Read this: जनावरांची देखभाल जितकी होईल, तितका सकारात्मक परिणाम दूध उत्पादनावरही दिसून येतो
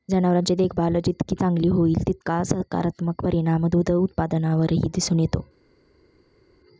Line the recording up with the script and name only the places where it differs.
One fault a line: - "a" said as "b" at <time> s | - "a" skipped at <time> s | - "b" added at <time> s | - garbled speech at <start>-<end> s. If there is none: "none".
- "चांगली" added at 1.4 s